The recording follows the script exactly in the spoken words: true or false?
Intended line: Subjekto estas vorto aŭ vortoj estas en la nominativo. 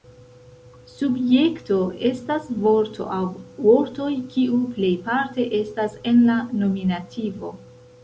false